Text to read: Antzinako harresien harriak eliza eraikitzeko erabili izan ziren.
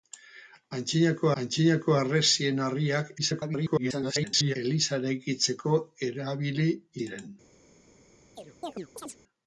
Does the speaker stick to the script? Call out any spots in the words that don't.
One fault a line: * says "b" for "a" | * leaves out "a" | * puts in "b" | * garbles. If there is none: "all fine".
* puts in "antzinako"
* garbles
* leaves out "izan"